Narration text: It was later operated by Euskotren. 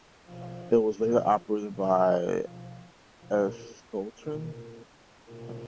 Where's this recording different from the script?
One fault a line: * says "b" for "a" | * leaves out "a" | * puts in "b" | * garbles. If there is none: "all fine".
all fine